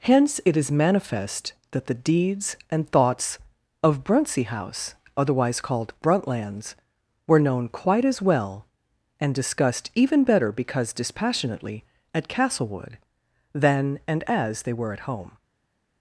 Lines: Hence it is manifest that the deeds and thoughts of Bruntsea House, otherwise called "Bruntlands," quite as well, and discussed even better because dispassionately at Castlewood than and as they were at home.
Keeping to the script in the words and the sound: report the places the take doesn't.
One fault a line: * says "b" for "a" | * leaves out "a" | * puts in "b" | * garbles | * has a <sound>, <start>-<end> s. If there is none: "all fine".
* puts in "were known"